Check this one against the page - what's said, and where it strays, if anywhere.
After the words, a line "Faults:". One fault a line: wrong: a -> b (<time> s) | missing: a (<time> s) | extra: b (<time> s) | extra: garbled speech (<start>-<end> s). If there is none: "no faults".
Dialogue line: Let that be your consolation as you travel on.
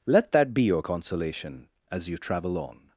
Let that be your consolation as you travel on.
Faults:
no faults